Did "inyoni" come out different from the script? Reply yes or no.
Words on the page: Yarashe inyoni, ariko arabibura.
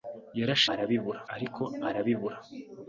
yes